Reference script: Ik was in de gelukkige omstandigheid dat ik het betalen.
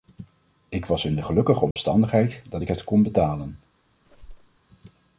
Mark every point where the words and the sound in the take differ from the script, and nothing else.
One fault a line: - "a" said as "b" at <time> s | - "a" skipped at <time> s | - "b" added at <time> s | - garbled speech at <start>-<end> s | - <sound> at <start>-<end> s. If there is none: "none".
- dropout at 1.7-1.8 s
- "kon" added at 2.8 s
- squeak at 4.0-4.6 s